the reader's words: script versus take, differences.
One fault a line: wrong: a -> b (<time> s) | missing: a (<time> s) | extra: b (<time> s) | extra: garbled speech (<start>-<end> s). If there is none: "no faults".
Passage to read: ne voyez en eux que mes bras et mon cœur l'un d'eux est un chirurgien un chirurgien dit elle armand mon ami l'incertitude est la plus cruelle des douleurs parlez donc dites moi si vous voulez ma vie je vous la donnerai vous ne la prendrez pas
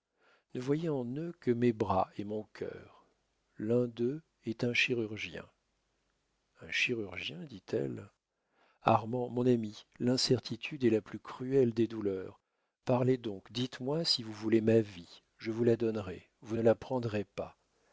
no faults